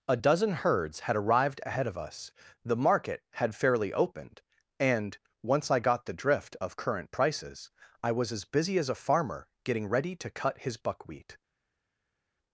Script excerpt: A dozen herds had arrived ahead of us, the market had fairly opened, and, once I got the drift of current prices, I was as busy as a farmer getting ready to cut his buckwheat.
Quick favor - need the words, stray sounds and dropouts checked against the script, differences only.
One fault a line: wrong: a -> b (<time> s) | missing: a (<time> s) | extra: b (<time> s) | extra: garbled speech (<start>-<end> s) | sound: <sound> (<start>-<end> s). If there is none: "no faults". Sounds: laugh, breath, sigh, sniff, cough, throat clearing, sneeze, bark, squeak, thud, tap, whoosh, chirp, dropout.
no faults